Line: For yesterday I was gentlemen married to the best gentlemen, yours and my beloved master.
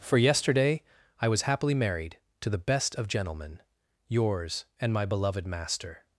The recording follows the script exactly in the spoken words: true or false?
false